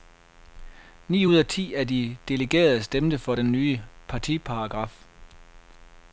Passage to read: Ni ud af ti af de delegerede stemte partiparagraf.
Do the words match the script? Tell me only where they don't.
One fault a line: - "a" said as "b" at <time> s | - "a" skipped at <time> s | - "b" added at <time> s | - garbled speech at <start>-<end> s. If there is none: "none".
- "for den nye" added at 3.2 s